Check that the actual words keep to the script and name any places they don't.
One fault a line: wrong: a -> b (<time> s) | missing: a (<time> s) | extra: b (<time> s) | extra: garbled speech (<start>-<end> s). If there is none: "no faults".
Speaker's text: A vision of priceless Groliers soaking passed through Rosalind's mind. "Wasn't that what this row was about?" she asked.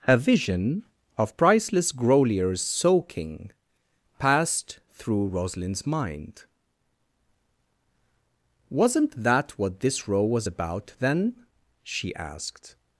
extra: then (11.0 s)